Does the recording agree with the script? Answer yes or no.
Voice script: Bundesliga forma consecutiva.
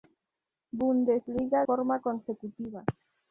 yes